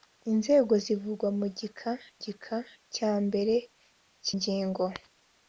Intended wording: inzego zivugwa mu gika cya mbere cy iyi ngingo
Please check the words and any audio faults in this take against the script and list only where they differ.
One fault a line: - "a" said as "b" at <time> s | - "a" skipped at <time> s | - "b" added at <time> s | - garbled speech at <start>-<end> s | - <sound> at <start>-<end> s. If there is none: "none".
- "gika" added at 2.2 s
- "iyi" skipped at 4.3 s